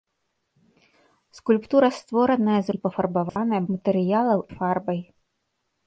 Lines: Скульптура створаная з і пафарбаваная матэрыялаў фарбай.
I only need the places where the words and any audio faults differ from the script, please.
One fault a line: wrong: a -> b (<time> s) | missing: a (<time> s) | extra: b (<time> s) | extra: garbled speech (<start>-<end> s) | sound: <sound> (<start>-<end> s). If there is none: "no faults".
sound: dropout (3.3-3.4 s)